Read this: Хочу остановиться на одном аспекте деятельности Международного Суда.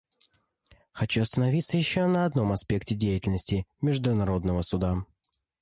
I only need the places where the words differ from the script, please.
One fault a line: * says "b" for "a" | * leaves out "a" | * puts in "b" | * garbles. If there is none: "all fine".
* puts in "еще"